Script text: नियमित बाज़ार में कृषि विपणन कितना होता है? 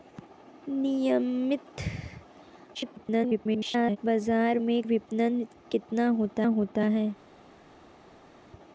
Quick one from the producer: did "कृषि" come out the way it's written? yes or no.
no